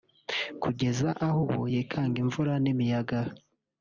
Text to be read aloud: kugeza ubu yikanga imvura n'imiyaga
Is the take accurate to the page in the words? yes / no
no